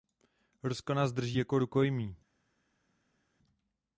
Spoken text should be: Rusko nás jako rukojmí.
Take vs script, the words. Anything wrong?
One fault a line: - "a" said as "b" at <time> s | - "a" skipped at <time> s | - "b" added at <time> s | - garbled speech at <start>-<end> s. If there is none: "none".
- "drží" added at 1.1 s